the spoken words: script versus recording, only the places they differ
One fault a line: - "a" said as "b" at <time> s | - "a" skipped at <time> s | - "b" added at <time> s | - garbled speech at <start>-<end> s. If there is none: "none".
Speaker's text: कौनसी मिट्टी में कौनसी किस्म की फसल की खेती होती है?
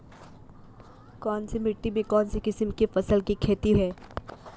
- "होती" skipped at 3.7 s